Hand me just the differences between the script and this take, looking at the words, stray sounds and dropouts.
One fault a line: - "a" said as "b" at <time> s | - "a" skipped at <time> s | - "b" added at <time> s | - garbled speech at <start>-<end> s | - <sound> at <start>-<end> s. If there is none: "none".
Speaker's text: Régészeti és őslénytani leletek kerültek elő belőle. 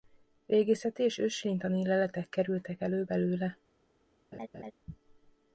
- laugh at 4.3-4.7 s